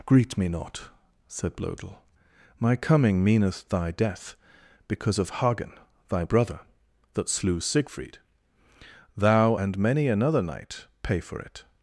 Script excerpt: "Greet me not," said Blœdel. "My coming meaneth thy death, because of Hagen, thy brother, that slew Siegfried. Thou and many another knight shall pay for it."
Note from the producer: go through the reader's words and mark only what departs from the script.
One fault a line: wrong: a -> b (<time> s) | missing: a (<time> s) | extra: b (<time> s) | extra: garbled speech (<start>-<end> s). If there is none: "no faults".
missing: shall (10.9 s)